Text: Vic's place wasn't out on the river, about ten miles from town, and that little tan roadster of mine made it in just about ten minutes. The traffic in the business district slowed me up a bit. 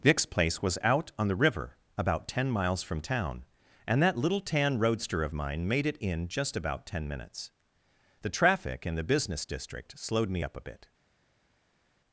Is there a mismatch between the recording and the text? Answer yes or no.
yes